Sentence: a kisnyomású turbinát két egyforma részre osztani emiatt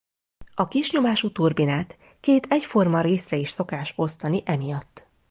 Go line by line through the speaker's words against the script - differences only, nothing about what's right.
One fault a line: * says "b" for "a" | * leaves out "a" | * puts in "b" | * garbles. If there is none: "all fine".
* puts in "is szokás"